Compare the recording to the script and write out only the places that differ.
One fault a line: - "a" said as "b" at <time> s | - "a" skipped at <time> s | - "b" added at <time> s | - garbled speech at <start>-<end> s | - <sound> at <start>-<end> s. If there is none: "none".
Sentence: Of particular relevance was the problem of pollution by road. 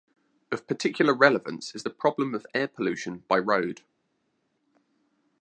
- "was" said as "is" at 1.8 s
- "air" added at 2.5 s